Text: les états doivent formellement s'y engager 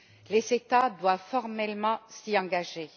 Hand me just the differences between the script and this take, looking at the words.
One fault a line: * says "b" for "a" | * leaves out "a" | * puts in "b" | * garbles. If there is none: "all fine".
all fine